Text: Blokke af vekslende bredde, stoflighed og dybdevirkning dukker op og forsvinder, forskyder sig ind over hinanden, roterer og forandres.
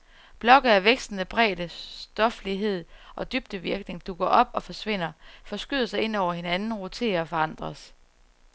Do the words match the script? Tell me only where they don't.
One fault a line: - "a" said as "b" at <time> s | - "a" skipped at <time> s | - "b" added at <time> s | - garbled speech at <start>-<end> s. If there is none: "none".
none